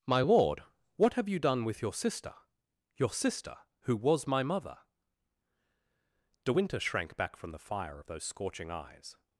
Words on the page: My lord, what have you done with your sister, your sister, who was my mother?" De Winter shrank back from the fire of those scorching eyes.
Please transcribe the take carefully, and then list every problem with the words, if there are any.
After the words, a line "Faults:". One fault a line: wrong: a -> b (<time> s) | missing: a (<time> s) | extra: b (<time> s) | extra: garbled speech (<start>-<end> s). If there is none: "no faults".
My lord, what have you done with your sister, your sister, who was my mother?" De Winter shrank back from the fire of those scorching eyes.
Faults:
no faults